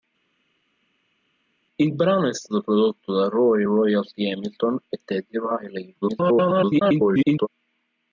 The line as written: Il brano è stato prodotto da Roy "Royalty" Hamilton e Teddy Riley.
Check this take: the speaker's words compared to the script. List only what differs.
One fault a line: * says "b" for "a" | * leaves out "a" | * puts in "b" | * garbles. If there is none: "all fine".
* garbles